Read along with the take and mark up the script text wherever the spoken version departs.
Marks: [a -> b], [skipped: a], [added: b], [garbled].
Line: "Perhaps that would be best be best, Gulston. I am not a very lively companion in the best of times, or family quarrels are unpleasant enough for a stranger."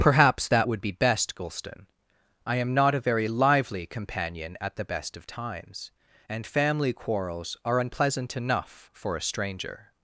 "Perhaps that would be best [skipped: be best,] Gulston. I am not a very lively companion [in -> at] the best of times, [or -> and] family quarrels are unpleasant enough for a stranger."